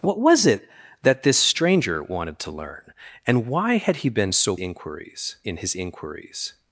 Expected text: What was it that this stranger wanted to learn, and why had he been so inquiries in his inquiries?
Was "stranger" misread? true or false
false